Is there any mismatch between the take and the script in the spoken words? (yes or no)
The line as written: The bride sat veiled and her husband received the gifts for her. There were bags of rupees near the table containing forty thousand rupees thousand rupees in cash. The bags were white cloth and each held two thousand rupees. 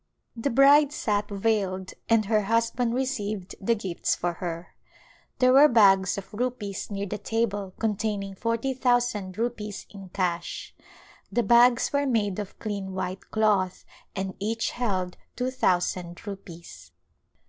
yes